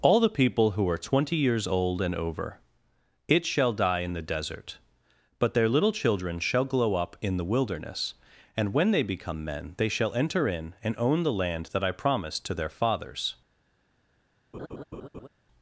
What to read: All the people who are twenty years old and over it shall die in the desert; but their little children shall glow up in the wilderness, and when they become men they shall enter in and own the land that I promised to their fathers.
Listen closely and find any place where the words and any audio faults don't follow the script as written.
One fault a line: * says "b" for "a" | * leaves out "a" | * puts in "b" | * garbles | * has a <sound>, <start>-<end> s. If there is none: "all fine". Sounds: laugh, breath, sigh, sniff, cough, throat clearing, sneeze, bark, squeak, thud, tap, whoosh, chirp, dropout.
* has a laugh, 14.5-15.3 s